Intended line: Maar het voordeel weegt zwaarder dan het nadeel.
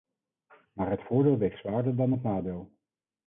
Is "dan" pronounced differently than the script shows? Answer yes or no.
no